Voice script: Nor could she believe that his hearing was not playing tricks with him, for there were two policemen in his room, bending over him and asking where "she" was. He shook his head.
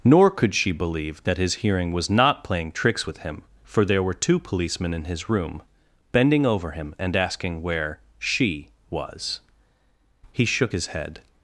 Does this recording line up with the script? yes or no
yes